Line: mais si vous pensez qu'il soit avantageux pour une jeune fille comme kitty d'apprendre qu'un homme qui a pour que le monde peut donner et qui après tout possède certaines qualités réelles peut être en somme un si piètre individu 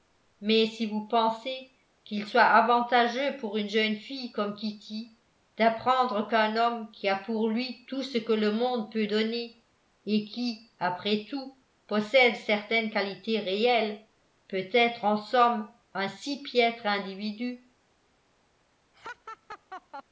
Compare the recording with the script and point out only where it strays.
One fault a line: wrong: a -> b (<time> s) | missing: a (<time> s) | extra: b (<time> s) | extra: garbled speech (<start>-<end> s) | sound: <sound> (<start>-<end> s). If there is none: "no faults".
extra: lui tout ce (7.5 s)
sound: laugh (18.9-20.0 s)